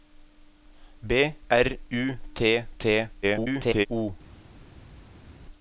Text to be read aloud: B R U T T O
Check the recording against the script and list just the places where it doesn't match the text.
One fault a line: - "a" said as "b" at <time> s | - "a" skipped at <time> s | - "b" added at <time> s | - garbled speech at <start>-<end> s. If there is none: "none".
- garbled speech at 3.2-3.9 s